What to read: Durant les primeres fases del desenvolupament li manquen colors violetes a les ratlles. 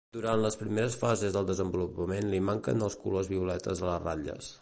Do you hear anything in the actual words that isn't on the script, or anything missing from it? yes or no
yes